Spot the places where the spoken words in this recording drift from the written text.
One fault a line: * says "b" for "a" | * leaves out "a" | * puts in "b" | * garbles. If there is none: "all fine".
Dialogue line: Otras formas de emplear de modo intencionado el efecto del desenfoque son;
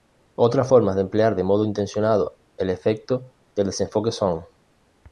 all fine